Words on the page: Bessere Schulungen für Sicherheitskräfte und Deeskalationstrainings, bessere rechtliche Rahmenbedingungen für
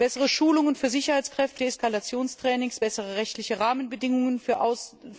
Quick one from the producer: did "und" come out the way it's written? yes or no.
no